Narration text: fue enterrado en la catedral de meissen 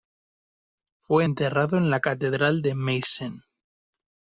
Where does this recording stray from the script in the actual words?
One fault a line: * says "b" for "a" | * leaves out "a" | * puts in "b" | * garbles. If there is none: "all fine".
all fine